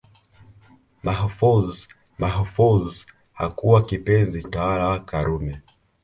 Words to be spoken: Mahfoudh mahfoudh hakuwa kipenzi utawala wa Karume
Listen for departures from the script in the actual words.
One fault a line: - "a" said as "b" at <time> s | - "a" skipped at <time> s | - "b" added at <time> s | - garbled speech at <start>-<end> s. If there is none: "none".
none